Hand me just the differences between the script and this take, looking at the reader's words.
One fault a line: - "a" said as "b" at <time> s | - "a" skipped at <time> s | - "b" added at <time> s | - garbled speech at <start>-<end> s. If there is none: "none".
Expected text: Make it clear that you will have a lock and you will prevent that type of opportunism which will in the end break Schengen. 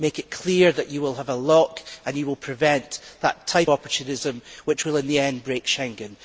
- "of" skipped at 3.7 s